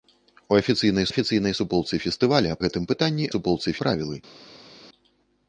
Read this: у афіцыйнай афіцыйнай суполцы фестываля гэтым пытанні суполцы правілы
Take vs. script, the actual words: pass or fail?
pass